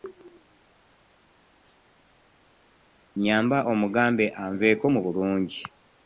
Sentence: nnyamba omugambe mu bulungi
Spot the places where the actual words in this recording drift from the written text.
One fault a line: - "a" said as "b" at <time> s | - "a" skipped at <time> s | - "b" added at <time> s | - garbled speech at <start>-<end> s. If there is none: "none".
- "anveeko" added at 4.4 s